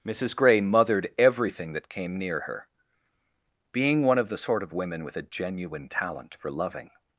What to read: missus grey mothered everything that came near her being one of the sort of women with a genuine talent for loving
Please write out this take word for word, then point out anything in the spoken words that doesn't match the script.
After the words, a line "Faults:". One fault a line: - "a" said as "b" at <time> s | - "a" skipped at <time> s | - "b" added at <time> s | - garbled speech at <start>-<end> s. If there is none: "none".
missus grey mothered everything that came near her being one of the sort of women with a genuine talent for loving
Faults:
none